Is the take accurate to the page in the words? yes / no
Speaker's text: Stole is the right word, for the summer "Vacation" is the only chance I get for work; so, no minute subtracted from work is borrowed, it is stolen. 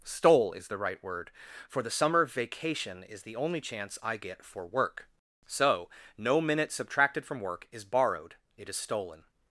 yes